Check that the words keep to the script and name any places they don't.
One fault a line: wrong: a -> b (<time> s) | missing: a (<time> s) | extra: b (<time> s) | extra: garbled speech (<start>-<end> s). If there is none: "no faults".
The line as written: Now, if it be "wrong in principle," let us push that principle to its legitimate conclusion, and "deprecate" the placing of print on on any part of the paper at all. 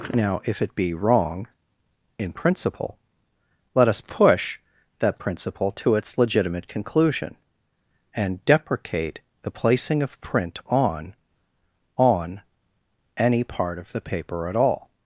no faults